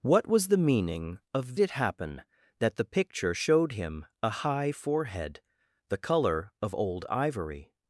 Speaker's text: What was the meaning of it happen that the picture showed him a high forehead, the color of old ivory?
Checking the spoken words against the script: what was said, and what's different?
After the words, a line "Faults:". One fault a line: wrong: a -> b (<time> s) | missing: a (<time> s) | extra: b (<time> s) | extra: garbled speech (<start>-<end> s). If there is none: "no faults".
What was the meaning of it happen that the picture showed him a high forehead, the color of old ivory?
Faults:
no faults